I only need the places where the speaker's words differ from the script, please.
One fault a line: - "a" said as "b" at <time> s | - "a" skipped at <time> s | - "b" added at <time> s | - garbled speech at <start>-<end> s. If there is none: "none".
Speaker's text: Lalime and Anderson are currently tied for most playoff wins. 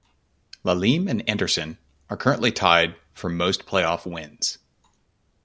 none